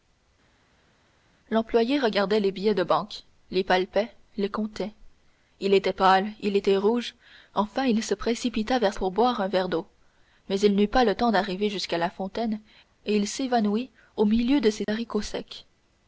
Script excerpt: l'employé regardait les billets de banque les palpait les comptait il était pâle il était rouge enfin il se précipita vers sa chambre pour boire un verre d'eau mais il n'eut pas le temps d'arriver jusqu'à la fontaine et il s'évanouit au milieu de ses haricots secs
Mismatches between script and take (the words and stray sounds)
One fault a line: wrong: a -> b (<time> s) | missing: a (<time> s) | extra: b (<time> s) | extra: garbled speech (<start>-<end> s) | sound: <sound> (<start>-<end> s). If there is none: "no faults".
missing: sa chambre (8.9 s)